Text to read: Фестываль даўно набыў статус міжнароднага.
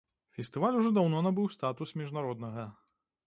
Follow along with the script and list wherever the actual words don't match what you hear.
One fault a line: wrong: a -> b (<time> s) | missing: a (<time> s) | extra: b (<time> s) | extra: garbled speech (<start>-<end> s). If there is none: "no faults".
extra: ужо (0.8 s)